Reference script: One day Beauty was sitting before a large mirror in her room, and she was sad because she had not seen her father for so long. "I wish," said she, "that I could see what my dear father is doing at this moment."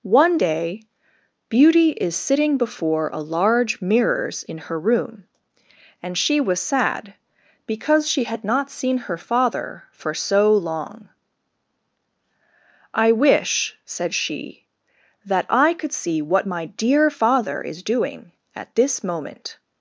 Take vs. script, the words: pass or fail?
fail